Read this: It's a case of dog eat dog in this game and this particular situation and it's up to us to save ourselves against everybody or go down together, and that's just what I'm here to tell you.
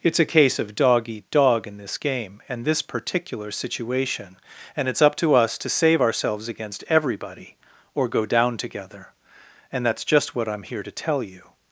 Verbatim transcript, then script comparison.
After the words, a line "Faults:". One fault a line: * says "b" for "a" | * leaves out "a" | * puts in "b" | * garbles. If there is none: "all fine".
It's a case of dog eat dog in this game and this particular situation and it's up to us to save ourselves against everybody or go down together, and that's just what I'm here to tell you.
Faults:
all fine